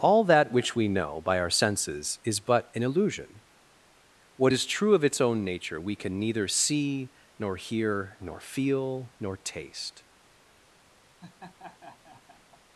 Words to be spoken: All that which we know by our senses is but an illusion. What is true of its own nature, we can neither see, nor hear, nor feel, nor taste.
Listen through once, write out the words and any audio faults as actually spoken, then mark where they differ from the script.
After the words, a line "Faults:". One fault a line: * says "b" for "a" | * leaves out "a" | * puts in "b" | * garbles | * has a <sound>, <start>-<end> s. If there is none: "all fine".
All that which we know by our senses is but an illusion. What is true of its own nature, we can neither see, nor hear, nor feel, nor taste.
Faults:
* has a laugh, 11.2-12.6 s